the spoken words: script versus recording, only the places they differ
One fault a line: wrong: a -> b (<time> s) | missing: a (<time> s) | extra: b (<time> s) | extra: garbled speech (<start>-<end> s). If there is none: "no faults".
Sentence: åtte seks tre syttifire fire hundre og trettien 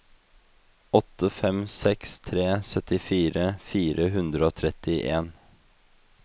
extra: fem (1.3 s)